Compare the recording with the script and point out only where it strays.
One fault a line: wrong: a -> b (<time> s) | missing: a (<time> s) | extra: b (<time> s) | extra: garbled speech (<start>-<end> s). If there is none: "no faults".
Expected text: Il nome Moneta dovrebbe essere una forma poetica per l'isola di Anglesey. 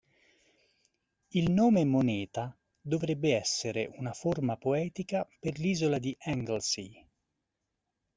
no faults